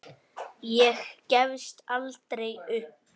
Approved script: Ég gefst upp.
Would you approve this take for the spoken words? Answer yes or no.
no